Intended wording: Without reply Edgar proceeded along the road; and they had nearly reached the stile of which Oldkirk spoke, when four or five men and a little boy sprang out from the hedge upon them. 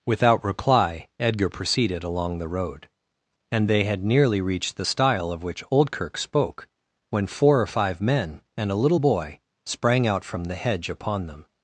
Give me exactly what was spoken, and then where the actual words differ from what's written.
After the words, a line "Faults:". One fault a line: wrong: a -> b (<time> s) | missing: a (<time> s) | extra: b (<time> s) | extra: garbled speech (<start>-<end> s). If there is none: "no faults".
Without reply Edgar proceeded along the road; and they had nearly reached the stile of which Oldkirk spoke, when four or five men and a little boy sprang out from the hedge upon them.
Faults:
no faults